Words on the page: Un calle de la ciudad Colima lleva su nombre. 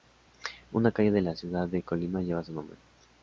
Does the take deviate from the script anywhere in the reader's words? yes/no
yes